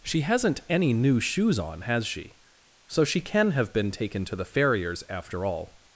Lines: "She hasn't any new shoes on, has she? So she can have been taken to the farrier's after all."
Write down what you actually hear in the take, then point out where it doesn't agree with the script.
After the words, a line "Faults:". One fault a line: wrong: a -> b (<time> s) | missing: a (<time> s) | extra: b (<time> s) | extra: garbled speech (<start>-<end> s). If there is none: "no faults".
"She hasn't any new shoes on, has she? So she can have been taken to the farrier's after all."
Faults:
no faults